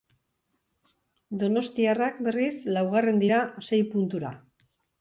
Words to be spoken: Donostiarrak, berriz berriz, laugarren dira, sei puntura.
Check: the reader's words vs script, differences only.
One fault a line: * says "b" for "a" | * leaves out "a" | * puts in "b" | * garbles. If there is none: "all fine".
* leaves out "berriz"